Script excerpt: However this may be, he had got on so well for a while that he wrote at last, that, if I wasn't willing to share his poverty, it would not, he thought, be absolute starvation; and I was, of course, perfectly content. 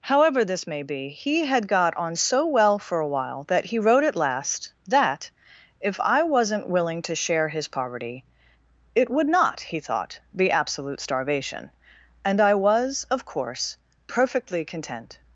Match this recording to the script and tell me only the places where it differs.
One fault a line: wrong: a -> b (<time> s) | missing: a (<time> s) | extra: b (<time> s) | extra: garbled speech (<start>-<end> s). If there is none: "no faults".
no faults